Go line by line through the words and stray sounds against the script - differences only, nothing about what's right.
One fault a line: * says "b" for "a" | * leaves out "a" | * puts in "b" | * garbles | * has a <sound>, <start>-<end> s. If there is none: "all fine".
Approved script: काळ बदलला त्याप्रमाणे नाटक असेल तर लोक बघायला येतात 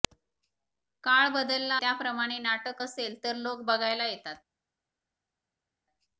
all fine